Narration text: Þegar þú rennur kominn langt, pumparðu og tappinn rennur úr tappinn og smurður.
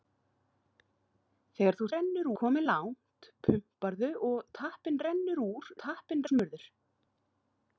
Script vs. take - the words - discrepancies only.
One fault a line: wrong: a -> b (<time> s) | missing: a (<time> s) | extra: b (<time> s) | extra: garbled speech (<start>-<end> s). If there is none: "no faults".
no faults